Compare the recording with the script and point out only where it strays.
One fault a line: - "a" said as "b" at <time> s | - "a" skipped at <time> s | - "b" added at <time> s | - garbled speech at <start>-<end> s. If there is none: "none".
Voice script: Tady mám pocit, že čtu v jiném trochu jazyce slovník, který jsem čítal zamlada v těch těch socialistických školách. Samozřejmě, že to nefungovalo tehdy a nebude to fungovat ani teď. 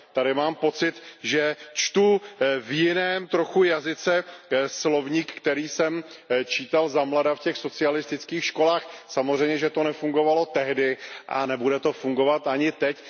- "těch" skipped at 7.6 s